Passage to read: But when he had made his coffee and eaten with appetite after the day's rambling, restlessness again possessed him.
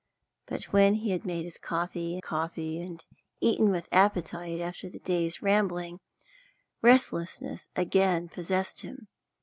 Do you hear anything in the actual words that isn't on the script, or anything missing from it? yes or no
yes